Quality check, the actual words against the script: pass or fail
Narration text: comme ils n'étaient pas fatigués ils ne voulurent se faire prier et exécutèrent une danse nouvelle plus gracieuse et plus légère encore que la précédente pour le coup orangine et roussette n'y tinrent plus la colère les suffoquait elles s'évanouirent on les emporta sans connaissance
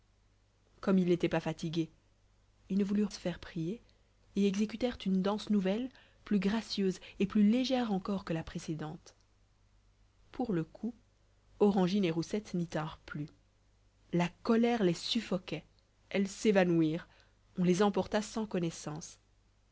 pass